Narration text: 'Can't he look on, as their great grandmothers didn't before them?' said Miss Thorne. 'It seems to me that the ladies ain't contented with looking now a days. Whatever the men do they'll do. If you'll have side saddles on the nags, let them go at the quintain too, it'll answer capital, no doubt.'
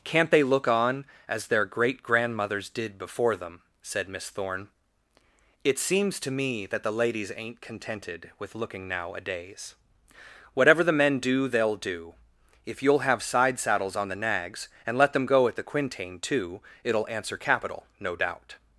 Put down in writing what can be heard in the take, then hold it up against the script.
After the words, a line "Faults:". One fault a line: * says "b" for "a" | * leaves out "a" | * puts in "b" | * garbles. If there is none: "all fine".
'Can't they look on, as their great grandmothers did before them?' said Miss Thorne. 'It seems to me that the ladies ain't contented with looking now a days. Whatever the men do they'll do. If you'll have side saddles on the nags, and let them go at the quintain too, it'll answer capital, no doubt.'
Faults:
* says "they" for "he"
* says "did" for "didn't"
* puts in "and"